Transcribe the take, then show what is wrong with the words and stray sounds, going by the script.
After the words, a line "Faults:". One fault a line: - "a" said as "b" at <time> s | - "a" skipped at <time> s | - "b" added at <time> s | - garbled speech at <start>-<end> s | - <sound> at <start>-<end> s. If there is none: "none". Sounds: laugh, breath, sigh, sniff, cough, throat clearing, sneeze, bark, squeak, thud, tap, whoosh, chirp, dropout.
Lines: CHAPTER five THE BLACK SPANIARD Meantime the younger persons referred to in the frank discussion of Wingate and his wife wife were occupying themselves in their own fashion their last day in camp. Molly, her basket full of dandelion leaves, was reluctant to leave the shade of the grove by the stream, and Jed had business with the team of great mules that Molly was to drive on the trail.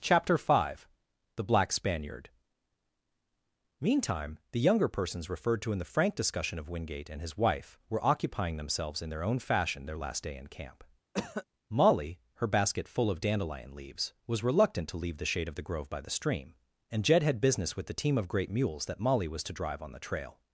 CHAPTER five THE BLACK SPANIARD Meantime the younger persons referred to in the frank discussion of Wingate and his wife were occupying themselves in their own fashion their last day in camp. Molly, her basket full of dandelion leaves, was reluctant to leave the shade of the grove by the stream, and Jed had business with the team of great mules that Molly was to drive on the trail.
Faults:
- "wife" skipped at 7.8 s
- cough at 11.1-11.4 s